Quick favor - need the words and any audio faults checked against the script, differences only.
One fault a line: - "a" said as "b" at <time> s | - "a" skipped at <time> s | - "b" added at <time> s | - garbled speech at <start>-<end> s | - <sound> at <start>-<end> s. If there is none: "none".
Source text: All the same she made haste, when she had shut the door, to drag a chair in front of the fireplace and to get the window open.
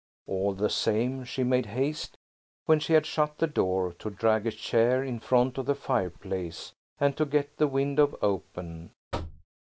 - thud at 9.1-9.5 s